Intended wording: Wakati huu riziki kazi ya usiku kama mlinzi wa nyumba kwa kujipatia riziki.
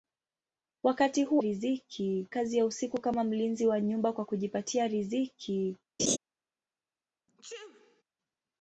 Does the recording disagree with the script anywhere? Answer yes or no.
no